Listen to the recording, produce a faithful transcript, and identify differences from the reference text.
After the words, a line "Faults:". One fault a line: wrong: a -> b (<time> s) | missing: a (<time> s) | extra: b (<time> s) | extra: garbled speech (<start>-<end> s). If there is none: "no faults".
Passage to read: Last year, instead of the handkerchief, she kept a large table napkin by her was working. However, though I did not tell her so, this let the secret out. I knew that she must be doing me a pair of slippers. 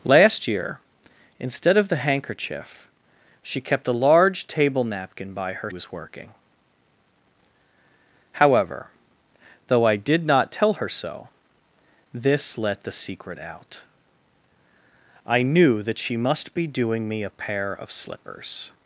Last year, instead of the handkerchief, she kept a large table napkin by her was working. However, though I did not tell her so, this let the secret out. I knew that she must be doing me a pair of slippers.
Faults:
no faults